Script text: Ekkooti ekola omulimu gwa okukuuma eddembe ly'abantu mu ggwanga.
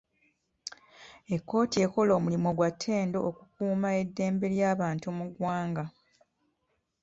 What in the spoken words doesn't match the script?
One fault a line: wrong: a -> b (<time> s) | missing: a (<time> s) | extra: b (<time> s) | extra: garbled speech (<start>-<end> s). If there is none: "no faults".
extra: ttendo (2.7 s)